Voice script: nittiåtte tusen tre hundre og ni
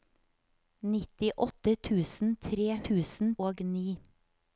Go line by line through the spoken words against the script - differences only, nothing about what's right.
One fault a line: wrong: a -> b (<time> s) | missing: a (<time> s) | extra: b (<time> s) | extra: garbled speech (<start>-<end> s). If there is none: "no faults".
wrong: hundre -> tusen (2.9 s)